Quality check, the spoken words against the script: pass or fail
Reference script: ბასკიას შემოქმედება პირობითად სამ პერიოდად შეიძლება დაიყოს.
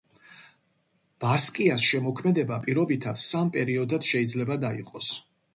pass